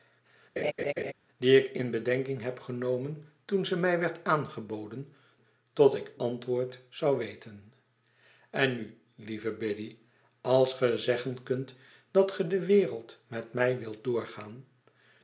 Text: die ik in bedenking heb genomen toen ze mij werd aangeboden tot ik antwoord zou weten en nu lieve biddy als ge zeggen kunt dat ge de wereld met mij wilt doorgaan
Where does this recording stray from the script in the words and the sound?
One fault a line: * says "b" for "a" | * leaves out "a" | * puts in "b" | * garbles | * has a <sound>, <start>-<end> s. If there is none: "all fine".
* has a laugh, 0.6-1.1 s